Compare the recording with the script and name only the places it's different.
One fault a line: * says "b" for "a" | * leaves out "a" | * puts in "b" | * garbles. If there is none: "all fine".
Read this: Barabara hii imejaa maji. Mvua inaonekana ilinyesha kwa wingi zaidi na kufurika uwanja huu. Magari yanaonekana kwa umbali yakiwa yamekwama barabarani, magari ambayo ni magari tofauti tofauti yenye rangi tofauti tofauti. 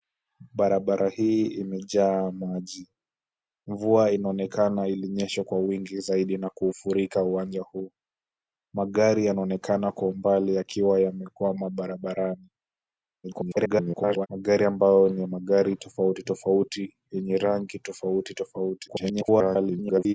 * garbles
* garbles